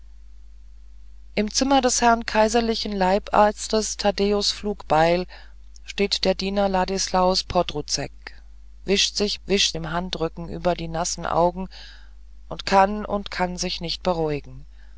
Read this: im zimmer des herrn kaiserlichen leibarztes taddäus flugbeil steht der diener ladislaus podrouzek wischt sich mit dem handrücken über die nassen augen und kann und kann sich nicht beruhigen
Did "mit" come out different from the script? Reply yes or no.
yes